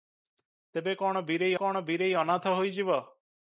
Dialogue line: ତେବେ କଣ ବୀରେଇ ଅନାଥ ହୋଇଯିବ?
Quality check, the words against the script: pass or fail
fail